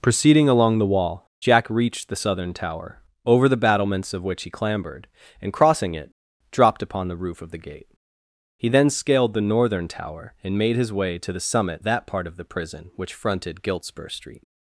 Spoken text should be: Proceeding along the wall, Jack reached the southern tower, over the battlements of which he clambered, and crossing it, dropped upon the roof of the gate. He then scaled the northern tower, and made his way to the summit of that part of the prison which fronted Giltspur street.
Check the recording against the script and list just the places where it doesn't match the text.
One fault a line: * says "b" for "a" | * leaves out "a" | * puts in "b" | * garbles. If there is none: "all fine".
* leaves out "of"